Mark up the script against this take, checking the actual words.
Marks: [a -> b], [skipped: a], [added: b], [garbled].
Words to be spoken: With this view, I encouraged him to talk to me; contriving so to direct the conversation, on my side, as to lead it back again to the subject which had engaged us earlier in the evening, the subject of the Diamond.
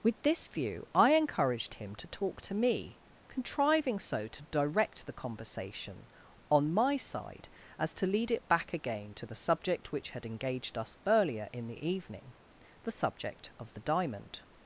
With this view, I encouraged him to talk to me; contriving so to direct the conversation, on my side, as to lead it back again to the subject which had engaged us earlier in the evening, the subject of the Diamond.